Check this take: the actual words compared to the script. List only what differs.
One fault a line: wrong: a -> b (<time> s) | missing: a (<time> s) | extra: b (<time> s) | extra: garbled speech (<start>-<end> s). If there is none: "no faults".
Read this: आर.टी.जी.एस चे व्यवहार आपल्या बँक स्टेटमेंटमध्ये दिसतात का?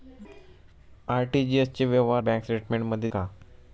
missing: आपल्या (2.2 s)
missing: दिसतात (3.1 s)